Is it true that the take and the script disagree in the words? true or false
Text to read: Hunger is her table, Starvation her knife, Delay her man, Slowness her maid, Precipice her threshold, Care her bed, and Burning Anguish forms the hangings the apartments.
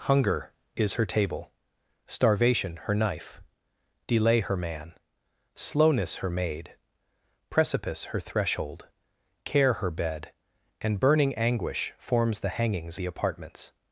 false